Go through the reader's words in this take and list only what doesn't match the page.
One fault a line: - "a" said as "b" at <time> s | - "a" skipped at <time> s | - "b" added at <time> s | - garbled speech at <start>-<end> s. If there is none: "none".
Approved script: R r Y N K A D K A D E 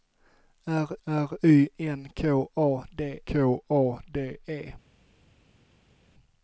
none